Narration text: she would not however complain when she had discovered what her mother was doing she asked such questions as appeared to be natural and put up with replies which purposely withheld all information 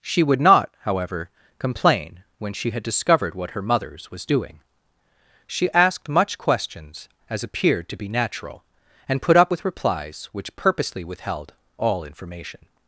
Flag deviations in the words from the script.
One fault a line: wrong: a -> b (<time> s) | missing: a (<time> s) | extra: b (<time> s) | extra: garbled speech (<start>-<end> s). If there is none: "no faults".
wrong: mother -> mothers (3.6 s)
wrong: such -> much (6.1 s)